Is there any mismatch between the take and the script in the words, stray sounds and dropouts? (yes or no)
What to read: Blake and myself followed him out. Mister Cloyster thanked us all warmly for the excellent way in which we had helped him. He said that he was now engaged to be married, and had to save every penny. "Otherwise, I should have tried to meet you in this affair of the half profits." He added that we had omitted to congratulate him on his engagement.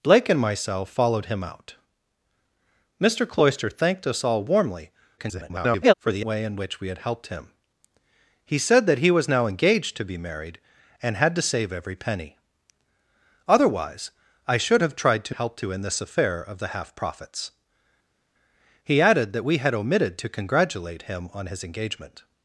yes